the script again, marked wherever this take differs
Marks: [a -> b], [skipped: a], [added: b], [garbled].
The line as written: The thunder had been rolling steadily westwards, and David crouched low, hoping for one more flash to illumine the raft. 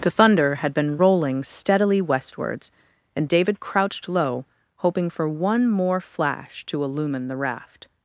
The thunder had been rolling steadily westwards, and David crouched low, hoping for one more flash to illumine the raft.